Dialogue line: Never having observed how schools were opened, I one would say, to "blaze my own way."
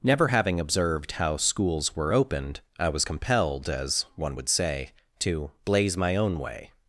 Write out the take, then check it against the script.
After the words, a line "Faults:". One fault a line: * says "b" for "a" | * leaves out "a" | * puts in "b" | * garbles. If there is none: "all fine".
Never having observed how schools were opened, I was compelled, as one would say, to "blaze my own way."
Faults:
* puts in "was compelled as"